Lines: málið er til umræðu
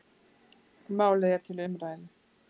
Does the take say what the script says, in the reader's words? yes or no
yes